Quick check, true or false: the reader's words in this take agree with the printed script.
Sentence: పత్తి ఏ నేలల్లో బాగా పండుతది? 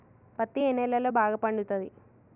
true